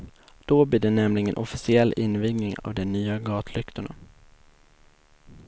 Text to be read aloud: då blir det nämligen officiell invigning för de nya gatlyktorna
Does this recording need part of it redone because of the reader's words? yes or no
yes